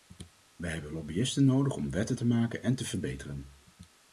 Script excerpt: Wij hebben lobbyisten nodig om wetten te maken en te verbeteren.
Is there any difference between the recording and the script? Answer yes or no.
no